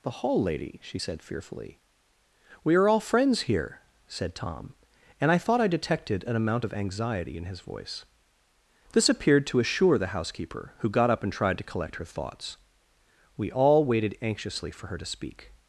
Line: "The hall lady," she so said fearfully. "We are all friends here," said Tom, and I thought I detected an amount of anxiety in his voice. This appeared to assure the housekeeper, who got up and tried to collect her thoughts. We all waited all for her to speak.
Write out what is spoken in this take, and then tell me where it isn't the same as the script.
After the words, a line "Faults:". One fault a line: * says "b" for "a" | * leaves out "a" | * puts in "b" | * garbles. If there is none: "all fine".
"The hall lady," she said fearfully. "We are all friends here," said Tom, and I thought I detected an amount of anxiety in his voice. This appeared to assure the housekeeper, who got up and tried to collect her thoughts. We all waited anxiously for her to speak.
Faults:
* leaves out "so"
* says "anxiously" for "all"